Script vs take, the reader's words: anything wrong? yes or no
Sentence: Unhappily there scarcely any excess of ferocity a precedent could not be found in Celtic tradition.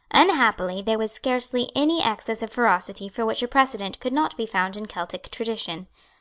yes